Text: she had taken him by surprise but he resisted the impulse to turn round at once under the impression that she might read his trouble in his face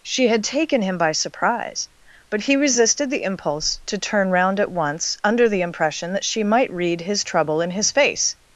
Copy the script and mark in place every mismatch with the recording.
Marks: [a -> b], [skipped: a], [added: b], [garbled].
she had taken him by surprise but he resisted the impulse to turn round at once under the impression that she might read his trouble in his face